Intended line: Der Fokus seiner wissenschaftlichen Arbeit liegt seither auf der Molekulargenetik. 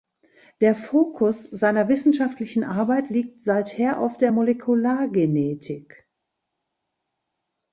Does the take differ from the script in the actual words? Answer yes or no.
no